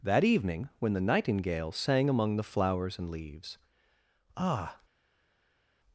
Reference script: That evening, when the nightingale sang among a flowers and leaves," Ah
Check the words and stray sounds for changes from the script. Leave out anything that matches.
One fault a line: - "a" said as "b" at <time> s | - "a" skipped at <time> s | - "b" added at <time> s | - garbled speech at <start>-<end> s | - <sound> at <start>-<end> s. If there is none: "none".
- "a" said as "the" at 2.4 s